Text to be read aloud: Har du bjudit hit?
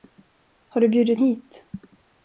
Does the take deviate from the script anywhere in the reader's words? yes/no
no